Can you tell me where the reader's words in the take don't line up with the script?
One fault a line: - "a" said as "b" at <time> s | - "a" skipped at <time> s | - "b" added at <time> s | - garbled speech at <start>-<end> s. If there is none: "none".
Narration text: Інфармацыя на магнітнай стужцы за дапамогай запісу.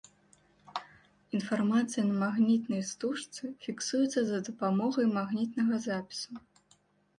- "фіксуецца" added at 3.7 s
- "магнітнага" added at 5.2 s